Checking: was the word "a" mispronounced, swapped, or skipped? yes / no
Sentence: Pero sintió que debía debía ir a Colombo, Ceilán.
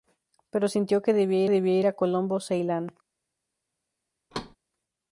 no